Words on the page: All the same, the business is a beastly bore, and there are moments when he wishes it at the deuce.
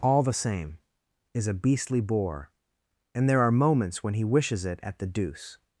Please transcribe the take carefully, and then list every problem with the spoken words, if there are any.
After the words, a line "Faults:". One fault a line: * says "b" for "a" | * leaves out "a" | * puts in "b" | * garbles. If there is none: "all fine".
All the same, is a beastly bore, and there are moments when he wishes it at the deuce.
Faults:
* leaves out "the business"